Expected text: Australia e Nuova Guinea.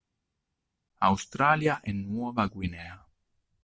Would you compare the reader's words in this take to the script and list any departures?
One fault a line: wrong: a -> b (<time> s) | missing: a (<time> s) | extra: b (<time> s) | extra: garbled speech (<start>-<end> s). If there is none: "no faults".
no faults